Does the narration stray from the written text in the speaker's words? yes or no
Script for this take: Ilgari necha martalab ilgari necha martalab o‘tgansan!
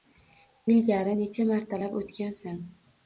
yes